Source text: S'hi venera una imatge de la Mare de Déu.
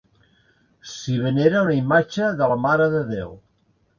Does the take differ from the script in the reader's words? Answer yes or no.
no